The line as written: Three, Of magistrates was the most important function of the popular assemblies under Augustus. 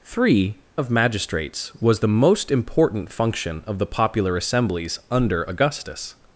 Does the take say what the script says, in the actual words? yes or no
yes